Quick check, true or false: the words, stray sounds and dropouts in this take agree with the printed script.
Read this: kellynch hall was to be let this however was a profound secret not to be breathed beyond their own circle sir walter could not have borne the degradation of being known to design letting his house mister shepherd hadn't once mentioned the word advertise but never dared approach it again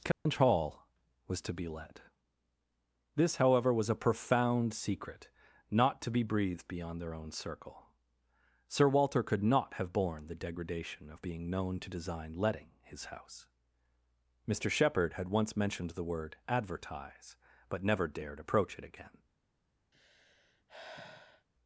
false